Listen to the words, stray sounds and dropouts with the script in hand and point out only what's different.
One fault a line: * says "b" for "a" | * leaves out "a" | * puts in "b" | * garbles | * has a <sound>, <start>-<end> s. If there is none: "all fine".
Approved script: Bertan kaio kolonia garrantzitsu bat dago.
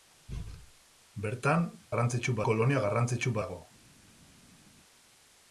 * says "garrantzitsu" for "kaio"
* leaves out "bat"